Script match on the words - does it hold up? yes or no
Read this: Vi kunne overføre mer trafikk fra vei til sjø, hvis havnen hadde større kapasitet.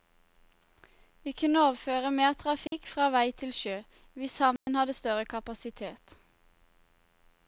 yes